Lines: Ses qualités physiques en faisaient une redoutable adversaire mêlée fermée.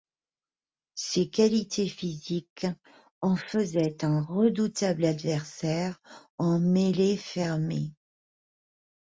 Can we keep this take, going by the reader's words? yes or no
no